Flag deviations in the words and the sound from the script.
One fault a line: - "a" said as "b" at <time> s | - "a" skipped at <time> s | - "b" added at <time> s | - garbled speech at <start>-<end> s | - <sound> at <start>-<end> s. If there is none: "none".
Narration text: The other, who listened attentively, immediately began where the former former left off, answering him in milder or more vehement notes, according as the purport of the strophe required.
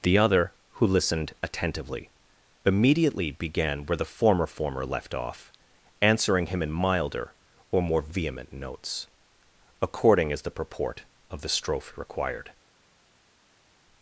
none